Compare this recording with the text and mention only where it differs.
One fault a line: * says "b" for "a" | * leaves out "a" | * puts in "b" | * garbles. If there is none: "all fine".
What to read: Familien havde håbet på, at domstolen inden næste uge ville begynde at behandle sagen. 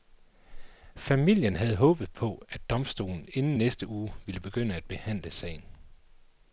all fine